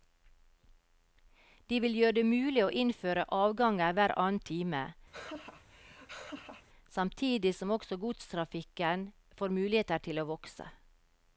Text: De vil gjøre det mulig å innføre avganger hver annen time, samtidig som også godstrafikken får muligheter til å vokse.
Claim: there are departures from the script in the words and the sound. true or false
true